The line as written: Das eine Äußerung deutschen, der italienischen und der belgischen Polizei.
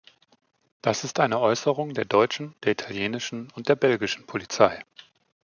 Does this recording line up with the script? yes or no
no